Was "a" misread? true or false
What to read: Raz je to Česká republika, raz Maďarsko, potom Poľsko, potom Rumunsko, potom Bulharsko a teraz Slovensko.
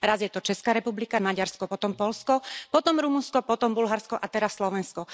false